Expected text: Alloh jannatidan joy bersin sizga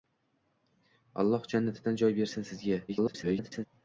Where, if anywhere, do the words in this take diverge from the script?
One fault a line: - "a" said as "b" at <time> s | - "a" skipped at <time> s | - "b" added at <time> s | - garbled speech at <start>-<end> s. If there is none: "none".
- garbled speech at 2.9-3.7 s